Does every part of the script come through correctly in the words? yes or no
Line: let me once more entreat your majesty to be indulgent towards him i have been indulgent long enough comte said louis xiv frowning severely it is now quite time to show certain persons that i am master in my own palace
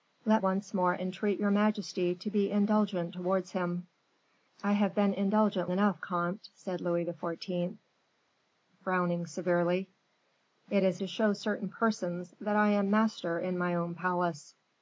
no